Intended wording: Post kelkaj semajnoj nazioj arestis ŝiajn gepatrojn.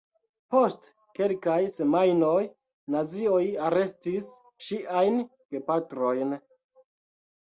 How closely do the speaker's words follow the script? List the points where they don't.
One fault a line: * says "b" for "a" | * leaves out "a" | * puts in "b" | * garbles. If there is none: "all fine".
all fine